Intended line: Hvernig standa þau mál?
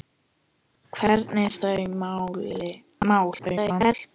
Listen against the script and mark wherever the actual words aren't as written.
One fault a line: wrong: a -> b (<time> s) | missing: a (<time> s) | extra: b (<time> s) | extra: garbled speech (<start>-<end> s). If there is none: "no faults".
missing: standa (1.5 s)
extra: garbled speech (3.4-3.9 s)